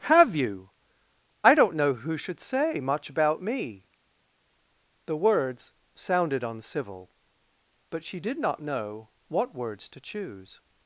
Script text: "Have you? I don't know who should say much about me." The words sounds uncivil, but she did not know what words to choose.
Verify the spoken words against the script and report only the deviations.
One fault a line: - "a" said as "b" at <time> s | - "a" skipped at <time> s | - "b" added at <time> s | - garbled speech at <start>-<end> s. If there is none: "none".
- "sounds" said as "sounded" at 6.0 s